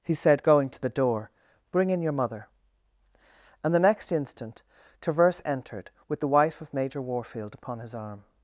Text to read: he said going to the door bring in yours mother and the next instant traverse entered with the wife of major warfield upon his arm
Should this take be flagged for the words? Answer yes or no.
yes